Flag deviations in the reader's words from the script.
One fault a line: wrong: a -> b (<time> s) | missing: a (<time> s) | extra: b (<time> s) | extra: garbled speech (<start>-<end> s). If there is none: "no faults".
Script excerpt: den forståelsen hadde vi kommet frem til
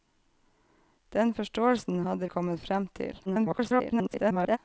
missing: vi (2.3 s)
extra: garbled speech (3.2-4.6 s)